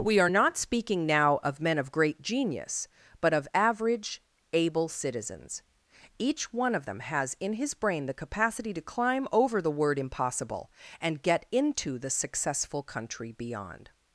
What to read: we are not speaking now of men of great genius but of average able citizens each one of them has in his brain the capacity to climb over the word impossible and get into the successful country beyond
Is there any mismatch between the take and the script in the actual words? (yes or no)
no